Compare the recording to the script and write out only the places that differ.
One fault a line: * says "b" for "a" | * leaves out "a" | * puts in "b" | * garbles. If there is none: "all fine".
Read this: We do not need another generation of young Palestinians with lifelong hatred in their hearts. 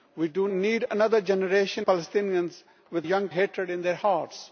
* leaves out "not"
* leaves out "of young"
* says "young" for "lifelong"